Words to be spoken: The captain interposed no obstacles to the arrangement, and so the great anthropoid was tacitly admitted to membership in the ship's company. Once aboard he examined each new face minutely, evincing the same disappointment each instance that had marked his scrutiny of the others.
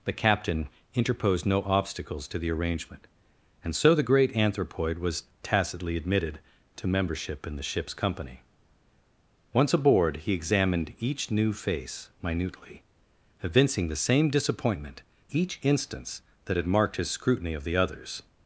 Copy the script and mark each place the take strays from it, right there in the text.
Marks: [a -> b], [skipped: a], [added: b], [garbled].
The captain interposed no obstacles to the arrangement, and so the great anthropoid was tacitly admitted to membership in the ship's company. Once aboard he examined each new face minutely, evincing the same disappointment each instance that had marked his scrutiny of the others.